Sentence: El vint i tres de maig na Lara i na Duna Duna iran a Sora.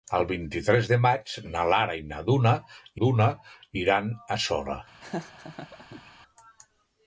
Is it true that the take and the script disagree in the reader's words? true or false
false